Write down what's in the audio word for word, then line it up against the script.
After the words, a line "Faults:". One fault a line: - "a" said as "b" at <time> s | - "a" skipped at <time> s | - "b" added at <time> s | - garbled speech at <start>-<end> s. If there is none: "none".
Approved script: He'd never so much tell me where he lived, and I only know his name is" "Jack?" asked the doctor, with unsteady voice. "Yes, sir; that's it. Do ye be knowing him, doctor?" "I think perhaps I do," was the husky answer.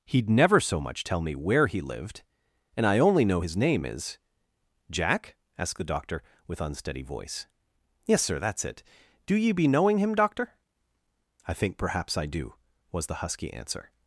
He'd never so much tell me where he lived, and I only know his name is" "Jack?" asked the doctor, with unsteady voice. "Yes, sir; that's it. Do ye be knowing him, doctor?" "I think perhaps I do," was the husky answer.
Faults:
none